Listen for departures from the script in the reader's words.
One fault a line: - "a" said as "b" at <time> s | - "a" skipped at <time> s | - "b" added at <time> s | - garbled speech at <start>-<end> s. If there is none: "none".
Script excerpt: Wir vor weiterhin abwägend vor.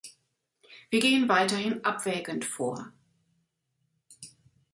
- "vor" said as "gehen" at 1.0 s